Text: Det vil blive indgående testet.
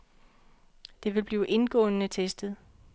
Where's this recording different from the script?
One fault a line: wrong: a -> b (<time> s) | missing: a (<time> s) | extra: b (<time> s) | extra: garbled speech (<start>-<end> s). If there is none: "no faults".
no faults